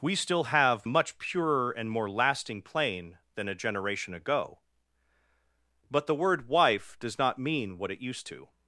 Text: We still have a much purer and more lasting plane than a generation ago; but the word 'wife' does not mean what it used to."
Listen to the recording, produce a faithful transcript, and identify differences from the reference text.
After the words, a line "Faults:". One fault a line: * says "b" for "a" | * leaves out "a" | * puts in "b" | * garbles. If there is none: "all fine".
We still have a much purer and more lasting plane than a generation ago; but the word 'wife' does not mean what it used to."
Faults:
all fine